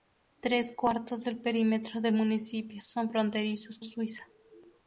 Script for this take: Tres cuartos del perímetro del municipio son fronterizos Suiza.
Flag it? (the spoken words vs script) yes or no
no